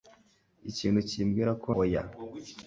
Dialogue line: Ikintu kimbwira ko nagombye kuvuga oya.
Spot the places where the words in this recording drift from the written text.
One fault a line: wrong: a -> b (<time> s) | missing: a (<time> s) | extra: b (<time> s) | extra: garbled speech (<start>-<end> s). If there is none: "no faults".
missing: nagombye kuvuga (1.7 s)